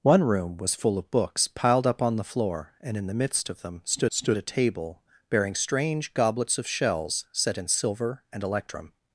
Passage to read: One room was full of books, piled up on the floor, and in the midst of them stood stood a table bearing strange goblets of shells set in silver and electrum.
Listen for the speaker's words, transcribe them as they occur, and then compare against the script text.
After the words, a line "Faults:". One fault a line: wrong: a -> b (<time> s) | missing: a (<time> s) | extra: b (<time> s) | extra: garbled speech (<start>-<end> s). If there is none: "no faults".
One room was full of books, piled up on the floor, and in the midst of them stood stood a table bearing strange goblets of shells set in silver and electrum.
Faults:
no faults